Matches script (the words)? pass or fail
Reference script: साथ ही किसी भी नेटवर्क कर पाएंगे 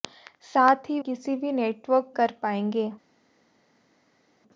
pass